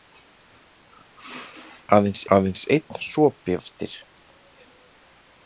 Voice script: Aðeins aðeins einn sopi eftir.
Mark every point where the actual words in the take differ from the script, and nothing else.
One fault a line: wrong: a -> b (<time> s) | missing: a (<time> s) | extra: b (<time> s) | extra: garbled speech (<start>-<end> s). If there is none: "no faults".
no faults